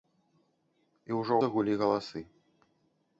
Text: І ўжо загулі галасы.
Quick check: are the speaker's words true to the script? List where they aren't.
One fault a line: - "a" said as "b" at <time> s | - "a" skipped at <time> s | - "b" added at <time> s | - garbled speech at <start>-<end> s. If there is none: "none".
none